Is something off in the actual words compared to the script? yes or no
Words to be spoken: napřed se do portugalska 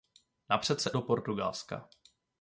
no